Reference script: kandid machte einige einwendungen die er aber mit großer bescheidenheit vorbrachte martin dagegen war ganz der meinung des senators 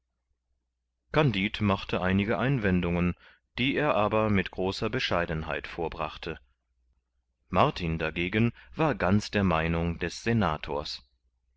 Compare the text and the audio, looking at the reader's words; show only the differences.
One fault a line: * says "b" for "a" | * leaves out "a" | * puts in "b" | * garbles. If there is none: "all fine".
all fine